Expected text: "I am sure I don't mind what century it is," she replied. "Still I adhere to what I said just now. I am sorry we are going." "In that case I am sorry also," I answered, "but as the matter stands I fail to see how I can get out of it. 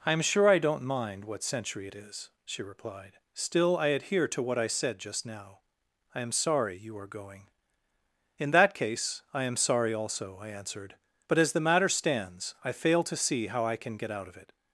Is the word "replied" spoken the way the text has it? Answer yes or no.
yes